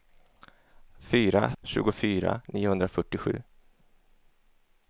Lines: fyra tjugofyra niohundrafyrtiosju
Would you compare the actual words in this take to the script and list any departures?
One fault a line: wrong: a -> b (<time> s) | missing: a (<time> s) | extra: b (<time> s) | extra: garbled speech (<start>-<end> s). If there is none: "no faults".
no faults